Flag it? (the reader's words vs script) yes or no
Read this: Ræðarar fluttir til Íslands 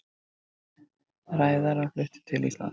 no